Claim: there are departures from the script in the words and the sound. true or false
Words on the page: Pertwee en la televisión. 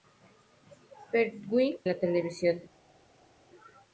true